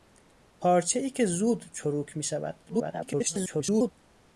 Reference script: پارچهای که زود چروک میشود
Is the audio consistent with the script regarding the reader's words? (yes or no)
no